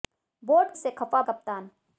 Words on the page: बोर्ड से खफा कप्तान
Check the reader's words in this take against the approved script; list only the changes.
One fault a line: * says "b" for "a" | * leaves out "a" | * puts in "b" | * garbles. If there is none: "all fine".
all fine